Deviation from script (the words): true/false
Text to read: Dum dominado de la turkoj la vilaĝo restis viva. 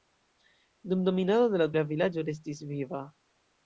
true